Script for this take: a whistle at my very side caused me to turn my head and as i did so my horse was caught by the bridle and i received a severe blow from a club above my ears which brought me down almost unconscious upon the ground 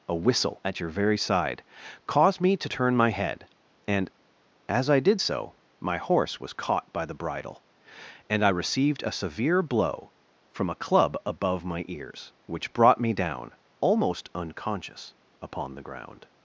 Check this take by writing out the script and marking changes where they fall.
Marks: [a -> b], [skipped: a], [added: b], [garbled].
a whistle at [my -> your] very side caused me to turn my head and as i did so my horse was caught by the bridle and i received a severe blow from a club above my ears which brought me down almost unconscious upon the ground